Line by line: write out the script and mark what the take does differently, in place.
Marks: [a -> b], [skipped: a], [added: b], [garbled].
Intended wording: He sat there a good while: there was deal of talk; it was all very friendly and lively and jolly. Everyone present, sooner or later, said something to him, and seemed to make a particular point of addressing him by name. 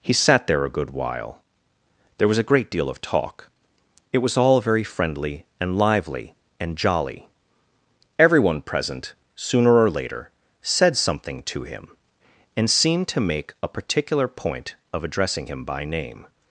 He sat there a good while: there was [added: a great] deal of talk; it was all very friendly and lively and jolly. Everyone present, sooner or later, said something to him, and seemed to make a particular point of addressing him by name.